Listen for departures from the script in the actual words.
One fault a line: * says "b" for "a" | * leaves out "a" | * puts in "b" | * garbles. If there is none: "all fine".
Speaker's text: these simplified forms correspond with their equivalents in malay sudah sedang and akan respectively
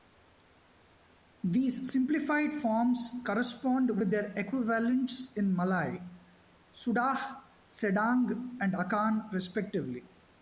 all fine